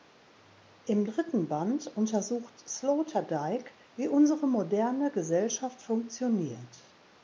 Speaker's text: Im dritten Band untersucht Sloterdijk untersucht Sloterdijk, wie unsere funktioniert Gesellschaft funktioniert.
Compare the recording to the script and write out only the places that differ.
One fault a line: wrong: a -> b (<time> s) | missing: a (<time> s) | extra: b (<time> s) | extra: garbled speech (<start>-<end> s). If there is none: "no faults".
missing: untersucht Sloterdijk (3.7 s)
wrong: funktioniert -> moderne (4.5 s)